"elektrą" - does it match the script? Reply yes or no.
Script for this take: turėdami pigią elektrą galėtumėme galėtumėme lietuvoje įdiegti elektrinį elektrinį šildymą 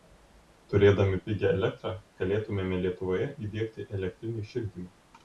yes